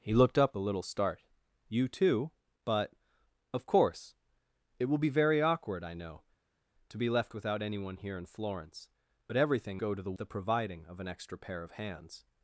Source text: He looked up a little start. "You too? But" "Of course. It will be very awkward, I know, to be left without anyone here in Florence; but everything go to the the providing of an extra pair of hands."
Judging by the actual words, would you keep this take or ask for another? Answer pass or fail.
pass